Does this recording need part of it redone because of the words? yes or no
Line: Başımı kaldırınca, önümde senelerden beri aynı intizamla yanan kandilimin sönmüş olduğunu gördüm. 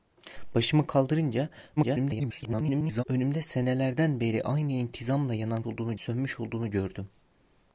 yes